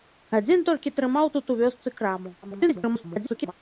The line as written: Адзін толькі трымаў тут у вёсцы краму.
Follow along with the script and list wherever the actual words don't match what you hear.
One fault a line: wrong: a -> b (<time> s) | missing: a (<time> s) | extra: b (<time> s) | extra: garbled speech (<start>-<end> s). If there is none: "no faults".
extra: garbled speech (2.4-3.5 s)